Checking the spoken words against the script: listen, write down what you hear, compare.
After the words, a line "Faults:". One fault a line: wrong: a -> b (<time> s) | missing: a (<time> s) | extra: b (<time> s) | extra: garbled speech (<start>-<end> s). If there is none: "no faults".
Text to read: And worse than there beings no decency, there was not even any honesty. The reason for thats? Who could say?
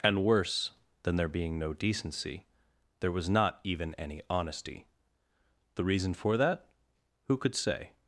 And worse than there being no decency, there was not even any honesty. The reason for that? Who could say?
Faults:
wrong: beings -> being (1.3 s)
wrong: thats -> that (6.4 s)